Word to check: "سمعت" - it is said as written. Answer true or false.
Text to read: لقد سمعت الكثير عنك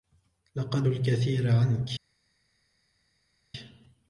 false